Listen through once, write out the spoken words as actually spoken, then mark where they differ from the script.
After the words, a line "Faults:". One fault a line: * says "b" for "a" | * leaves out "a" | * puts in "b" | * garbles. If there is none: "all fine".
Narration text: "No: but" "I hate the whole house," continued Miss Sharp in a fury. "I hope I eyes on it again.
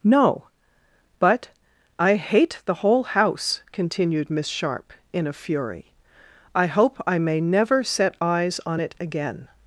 "No: but" "I hate the whole house," continued Miss Sharp in a fury. "I hope I may never set eyes on it again.
Faults:
* puts in "may never set"